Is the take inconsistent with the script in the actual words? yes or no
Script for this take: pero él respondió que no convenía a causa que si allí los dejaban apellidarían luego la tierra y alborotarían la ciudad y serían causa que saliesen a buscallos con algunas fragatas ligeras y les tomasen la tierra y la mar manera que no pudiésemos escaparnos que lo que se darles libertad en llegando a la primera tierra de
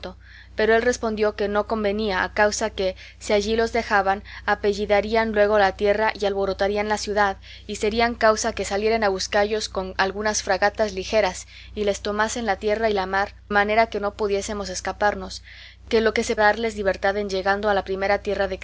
no